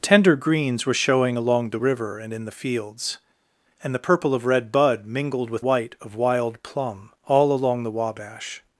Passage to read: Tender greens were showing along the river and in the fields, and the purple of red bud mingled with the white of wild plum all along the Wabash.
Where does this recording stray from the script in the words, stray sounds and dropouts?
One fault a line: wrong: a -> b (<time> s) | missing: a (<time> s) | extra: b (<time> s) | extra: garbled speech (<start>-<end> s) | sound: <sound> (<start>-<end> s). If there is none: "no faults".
missing: the (5.6 s)